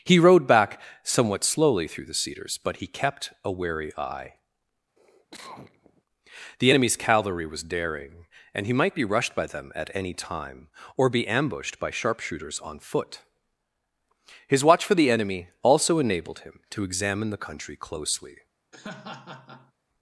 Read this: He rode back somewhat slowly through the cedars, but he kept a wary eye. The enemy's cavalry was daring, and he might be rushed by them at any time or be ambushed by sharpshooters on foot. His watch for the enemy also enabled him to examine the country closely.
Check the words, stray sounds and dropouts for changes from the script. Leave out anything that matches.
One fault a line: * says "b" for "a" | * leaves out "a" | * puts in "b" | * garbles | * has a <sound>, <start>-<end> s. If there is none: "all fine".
* has a cough, 5.0-6.0 s
* has a laugh, 18.7-19.7 s